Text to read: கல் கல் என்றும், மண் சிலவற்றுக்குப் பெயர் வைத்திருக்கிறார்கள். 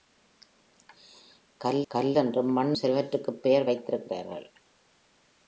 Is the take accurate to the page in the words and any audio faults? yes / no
yes